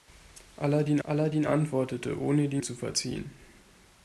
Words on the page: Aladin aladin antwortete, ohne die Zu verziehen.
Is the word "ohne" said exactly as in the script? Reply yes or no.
yes